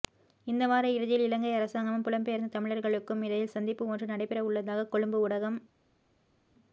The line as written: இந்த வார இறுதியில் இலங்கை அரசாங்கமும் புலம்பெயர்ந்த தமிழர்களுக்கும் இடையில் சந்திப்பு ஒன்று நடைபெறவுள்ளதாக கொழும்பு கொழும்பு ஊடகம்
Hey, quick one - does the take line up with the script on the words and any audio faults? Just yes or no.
no